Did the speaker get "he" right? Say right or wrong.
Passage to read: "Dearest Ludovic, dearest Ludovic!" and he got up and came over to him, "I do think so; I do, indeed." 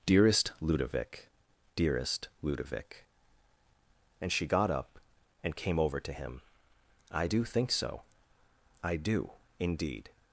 wrong